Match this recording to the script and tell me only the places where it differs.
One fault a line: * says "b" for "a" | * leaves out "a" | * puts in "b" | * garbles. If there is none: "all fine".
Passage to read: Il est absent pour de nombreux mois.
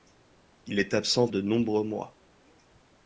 * leaves out "pour"